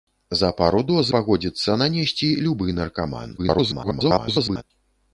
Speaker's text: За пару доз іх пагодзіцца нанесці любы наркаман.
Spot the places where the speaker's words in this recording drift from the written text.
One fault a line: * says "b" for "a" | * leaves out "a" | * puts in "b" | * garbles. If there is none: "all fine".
* leaves out "іх"
* garbles